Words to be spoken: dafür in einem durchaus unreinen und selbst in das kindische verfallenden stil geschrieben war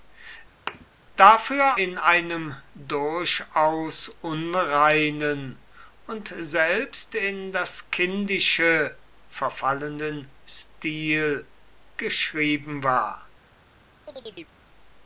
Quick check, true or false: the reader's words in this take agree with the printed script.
true